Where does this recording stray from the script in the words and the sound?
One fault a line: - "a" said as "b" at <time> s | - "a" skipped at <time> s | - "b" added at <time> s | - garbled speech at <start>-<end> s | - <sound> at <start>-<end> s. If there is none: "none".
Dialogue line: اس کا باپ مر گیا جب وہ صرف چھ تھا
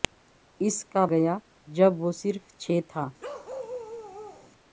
- "باپ مر" skipped at 1.0 s
- bark at 3.2-4.5 s